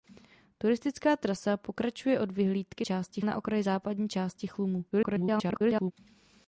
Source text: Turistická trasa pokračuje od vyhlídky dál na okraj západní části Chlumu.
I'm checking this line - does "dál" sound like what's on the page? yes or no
no